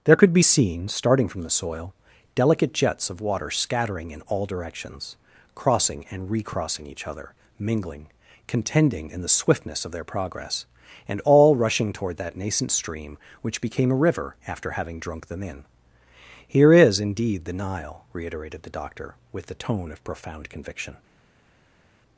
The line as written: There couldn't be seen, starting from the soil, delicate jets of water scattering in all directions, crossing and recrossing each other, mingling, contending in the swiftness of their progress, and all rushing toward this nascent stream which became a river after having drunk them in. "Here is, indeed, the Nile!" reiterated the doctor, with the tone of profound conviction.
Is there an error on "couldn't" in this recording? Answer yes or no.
yes